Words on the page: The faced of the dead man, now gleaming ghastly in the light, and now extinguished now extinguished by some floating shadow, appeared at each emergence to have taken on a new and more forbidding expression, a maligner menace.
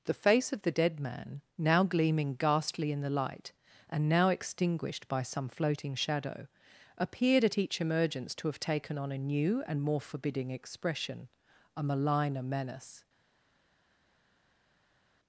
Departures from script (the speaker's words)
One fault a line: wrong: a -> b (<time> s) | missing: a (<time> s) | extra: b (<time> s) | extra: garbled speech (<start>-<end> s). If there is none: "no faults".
wrong: faced -> face (0.1 s)
missing: now extinguished (5.1 s)